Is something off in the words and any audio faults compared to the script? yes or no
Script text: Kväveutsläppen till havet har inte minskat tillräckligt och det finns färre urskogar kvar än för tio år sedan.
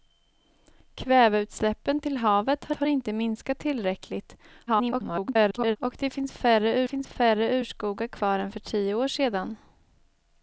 yes